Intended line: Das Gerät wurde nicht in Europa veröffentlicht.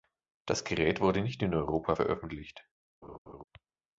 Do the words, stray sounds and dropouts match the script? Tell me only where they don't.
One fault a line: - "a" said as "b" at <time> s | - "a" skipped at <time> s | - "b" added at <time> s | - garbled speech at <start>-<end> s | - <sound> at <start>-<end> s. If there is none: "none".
- laugh at 3.0-3.4 s